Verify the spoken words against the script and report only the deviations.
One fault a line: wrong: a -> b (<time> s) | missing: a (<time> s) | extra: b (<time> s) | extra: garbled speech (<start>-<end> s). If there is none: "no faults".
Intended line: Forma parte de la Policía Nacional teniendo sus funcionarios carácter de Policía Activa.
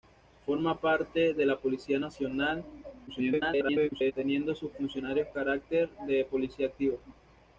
extra: garbled speech (3.1-4.1 s)